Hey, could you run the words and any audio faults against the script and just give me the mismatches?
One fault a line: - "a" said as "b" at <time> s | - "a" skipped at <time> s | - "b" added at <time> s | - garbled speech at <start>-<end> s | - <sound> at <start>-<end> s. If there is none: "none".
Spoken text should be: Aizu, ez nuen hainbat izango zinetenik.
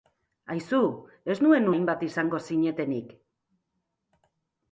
none